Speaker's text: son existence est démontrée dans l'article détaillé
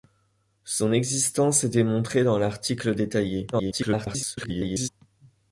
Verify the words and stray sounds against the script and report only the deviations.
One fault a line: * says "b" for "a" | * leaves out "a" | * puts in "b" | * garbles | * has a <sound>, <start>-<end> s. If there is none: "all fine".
* garbles